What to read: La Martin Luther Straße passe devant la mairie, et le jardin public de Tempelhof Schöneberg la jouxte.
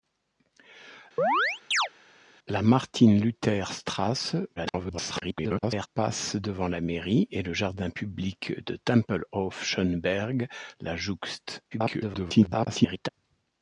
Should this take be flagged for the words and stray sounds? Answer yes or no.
yes